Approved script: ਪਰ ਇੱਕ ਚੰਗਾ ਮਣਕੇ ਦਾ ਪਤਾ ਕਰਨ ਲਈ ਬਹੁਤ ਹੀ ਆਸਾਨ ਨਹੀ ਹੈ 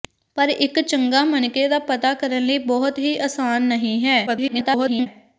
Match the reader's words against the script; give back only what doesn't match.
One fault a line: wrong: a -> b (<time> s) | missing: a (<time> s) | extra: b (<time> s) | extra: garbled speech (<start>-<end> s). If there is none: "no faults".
extra: garbled speech (4.3-5.1 s)